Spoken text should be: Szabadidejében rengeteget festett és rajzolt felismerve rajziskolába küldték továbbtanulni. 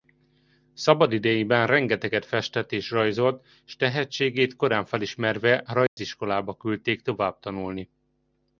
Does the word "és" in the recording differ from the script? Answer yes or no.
no